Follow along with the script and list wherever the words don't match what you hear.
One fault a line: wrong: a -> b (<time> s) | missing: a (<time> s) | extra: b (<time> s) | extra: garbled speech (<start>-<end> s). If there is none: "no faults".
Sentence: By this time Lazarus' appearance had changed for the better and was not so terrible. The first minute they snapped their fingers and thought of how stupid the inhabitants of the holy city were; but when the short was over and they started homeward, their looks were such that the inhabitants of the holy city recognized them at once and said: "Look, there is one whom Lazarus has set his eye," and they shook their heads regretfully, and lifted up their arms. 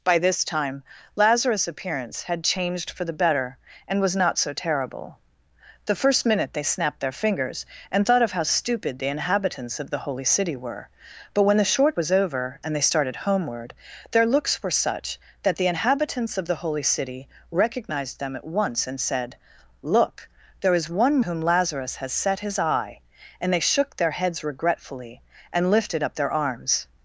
no faults